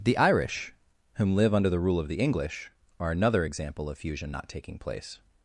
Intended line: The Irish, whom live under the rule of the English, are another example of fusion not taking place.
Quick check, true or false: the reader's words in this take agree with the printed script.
true